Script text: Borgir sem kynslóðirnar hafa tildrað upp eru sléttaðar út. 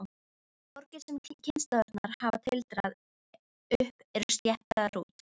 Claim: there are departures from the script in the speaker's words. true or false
false